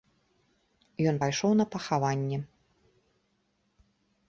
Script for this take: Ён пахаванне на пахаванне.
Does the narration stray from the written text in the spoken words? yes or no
yes